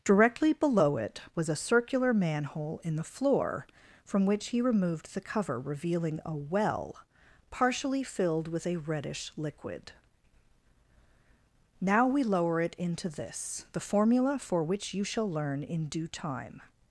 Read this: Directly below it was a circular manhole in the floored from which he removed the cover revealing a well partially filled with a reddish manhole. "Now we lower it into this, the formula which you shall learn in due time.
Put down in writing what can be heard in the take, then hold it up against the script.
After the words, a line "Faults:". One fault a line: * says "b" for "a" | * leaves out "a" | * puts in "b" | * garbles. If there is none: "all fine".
Directly below it was a circular manhole in the floor from which he removed the cover revealing a well partially filled with a reddish liquid. "Now we lower it into this, the formula for which you shall learn in due time.
Faults:
* says "floor" for "floored"
* says "liquid" for "manhole"
* puts in "for"